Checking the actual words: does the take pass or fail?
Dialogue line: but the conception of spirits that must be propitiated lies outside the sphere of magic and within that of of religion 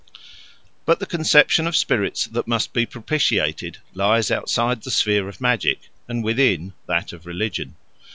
fail